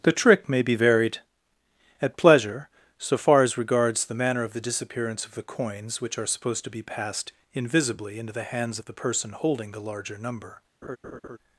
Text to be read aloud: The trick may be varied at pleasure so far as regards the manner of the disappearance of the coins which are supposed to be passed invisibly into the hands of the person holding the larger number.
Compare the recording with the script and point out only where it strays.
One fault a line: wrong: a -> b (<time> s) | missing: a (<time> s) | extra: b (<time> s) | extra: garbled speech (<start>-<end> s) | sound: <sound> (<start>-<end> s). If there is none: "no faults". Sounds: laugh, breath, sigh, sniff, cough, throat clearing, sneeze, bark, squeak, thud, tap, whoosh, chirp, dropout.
sound: laugh (10.8-11.4 s)